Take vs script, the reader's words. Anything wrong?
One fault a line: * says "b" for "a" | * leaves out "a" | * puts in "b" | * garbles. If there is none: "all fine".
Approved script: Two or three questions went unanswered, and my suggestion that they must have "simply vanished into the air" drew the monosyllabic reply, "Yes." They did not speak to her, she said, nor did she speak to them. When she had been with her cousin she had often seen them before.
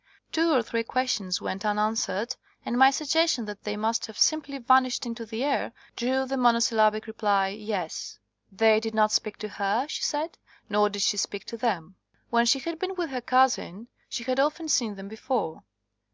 all fine